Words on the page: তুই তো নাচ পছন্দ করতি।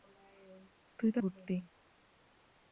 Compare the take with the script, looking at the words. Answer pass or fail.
fail